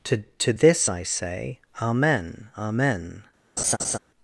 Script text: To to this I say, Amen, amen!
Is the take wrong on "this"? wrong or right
right